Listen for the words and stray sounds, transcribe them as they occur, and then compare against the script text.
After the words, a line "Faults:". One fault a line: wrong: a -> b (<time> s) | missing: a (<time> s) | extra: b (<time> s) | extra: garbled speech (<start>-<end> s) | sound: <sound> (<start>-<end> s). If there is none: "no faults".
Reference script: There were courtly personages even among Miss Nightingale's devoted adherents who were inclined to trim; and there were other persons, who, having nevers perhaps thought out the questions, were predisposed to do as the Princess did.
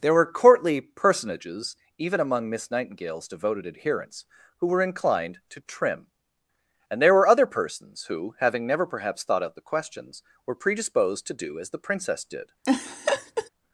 There were courtly personages even among Miss Nightingale's devoted adherents who were inclined to trim; and there were other persons, who, having never perhaps thought out the questions, were predisposed to do as the Princess did.
Faults:
wrong: nevers -> never (8.7 s)
sound: laugh (12.6-13.5 s)